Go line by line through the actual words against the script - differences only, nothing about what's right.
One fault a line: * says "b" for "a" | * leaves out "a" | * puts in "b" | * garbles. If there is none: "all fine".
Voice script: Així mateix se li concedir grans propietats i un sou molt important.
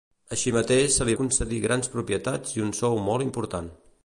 all fine